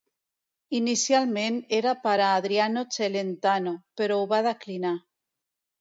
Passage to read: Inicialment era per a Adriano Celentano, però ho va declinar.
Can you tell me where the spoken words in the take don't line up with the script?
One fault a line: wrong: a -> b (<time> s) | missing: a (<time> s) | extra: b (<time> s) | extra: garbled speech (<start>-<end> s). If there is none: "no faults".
no faults